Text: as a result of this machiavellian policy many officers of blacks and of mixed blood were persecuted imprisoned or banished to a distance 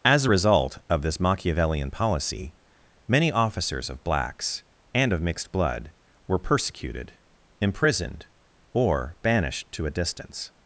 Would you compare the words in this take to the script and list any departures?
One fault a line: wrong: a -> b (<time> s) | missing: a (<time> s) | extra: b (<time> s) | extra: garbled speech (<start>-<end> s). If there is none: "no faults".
no faults